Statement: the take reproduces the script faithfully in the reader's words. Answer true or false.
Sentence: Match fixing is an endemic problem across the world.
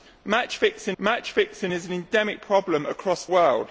false